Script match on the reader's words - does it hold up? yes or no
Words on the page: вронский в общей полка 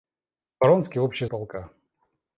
yes